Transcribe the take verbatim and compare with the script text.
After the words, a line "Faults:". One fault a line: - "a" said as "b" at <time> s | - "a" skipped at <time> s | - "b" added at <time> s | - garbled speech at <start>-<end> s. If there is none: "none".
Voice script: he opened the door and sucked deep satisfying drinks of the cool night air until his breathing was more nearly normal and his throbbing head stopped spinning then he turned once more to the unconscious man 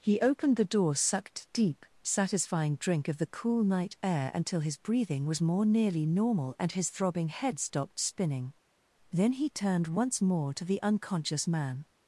he opened the door sucked deep satisfying drink of the cool night air until his breathing was more nearly normal and his throbbing head stopped spinning then he turned once more to the unconscious man
Faults:
- "and" skipped at 0.9 s
- "drinks" said as "drink" at 2.8 s